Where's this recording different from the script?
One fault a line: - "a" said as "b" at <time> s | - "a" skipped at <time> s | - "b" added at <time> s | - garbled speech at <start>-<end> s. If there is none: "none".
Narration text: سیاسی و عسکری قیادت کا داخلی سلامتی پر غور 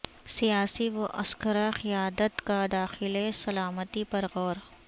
none